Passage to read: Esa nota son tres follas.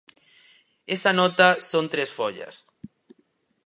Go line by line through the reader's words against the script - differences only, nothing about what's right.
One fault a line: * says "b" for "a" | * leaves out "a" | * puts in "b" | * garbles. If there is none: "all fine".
all fine